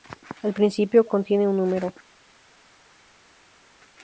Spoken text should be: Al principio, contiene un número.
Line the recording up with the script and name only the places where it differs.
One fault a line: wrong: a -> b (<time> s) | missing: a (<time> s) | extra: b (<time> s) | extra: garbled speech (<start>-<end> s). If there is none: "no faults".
no faults